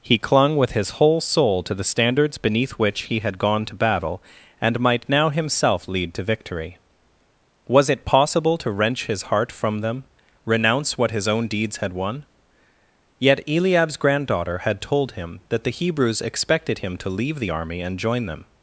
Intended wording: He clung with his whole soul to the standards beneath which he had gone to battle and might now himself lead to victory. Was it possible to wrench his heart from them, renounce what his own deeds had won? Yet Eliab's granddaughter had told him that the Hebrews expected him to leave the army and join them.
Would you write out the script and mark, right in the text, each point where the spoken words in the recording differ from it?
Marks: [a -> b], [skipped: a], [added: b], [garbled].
He clung with his whole soul to the standards beneath which he had gone to battle and might now himself lead to victory. Was it possible to wrench his heart from them, renounce what his own deeds had won? Yet Eliab's granddaughter had told him that the Hebrews expected him to leave the army and join them.